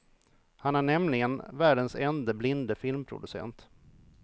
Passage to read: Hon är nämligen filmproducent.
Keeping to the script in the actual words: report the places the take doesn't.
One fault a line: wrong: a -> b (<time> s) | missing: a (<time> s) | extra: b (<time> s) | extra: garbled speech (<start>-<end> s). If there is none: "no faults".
wrong: Hon -> Han (0.6 s)
extra: världens ende blinde (1.5 s)